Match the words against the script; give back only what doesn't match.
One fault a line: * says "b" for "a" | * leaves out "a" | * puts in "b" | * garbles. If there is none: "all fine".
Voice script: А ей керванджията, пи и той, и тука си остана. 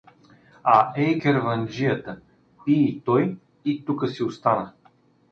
all fine